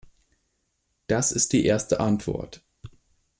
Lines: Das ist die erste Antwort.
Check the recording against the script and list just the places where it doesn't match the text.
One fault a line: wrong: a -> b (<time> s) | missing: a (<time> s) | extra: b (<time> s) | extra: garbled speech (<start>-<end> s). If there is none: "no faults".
no faults